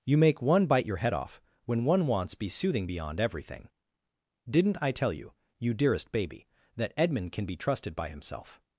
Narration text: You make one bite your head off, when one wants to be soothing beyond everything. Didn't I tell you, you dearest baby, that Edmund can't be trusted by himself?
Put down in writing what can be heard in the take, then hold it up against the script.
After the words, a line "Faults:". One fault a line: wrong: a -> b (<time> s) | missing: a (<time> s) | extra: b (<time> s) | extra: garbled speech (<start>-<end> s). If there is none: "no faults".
You make one bite your head off, when one wants be soothing beyond everything. Didn't I tell you, you dearest baby, that Edmund can be trusted by himself?
Faults:
missing: to (2.3 s)
wrong: can't -> can (7.3 s)